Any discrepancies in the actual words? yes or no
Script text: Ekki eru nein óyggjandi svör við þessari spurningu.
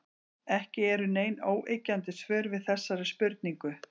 no